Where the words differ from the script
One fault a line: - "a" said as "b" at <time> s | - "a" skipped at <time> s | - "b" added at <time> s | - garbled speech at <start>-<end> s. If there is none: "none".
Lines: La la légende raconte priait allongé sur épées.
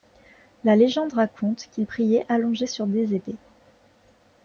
- "la" skipped at 0.8 s
- "qu'il" added at 1.7 s
- "des" added at 2.9 s